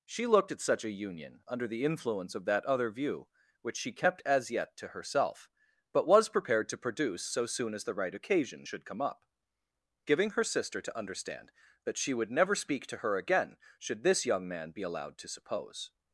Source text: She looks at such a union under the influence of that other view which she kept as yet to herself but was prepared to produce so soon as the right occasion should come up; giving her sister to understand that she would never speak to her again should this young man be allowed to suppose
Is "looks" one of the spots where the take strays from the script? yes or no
yes